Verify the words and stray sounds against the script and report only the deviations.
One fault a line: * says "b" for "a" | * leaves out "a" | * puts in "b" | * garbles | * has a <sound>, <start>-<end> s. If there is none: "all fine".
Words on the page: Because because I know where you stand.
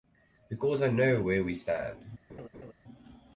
* leaves out "because"
* says "we" for "you"
* has a laugh, 2.3-2.7 s